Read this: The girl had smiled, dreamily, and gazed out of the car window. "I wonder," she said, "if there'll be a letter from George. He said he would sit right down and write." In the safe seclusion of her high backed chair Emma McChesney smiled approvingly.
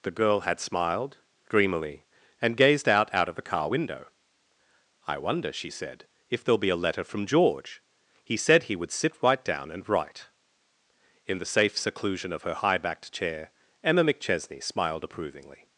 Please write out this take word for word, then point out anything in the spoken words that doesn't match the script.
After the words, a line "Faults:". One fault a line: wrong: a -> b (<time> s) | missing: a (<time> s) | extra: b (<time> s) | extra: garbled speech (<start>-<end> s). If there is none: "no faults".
The girl had smiled, dreamily, and gazed out out of the car window. "I wonder," she said, "if there'll be a letter from George. He said he would sit right down and write." In the safe seclusion of her high backed chair Emma McChesney smiled approvingly.
Faults:
extra: out (3.1 s)